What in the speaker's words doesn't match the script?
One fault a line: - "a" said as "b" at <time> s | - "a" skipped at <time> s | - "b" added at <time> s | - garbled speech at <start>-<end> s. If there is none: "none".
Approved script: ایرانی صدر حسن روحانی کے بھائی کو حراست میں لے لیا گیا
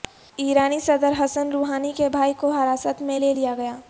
none